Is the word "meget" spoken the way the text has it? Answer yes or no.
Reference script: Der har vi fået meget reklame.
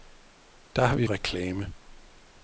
no